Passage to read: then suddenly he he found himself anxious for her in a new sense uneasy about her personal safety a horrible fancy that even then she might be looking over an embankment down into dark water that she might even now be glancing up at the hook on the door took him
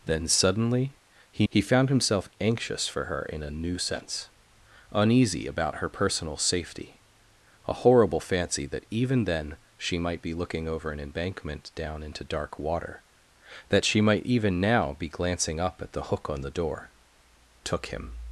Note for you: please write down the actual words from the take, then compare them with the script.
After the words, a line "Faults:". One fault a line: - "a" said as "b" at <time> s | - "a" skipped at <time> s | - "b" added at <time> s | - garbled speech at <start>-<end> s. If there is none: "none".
then suddenly he he found himself anxious for her in a new sense uneasy about her personal safety a horrible fancy that even then she might be looking over an embankment down into dark water that she might even now be glancing up at the hook on the door took him
Faults:
none